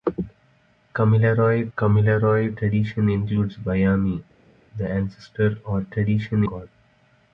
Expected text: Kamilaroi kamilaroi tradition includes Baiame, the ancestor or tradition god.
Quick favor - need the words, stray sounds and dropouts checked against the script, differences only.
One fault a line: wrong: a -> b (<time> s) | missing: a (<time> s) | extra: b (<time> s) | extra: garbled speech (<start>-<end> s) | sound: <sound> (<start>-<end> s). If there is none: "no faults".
no faults